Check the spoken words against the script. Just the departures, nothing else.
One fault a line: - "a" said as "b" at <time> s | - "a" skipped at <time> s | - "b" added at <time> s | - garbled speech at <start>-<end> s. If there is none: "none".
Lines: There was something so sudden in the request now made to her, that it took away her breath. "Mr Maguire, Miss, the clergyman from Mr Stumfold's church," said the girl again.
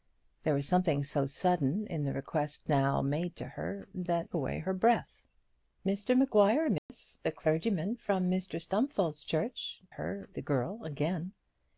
- "it took" skipped at 4.3 s
- "said" said as "her" at 9.9 s